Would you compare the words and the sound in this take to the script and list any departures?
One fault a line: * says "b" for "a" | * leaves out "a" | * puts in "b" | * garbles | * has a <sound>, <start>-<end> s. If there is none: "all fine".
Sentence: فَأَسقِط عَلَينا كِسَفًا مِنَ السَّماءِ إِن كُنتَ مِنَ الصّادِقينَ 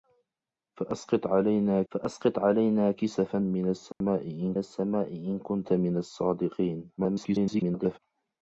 * puts in "فَأَسقِط عَلَينا"
* has a dropout, 3.9-4.0 s
* puts in "السَّماءِ إِن"
* garbles